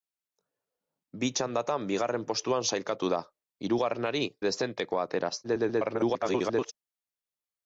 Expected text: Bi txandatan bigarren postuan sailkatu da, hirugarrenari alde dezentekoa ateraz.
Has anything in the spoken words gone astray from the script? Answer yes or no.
yes